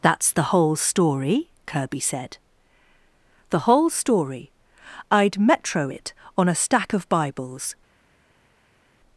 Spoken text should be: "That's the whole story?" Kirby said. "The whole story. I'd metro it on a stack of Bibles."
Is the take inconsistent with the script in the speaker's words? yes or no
no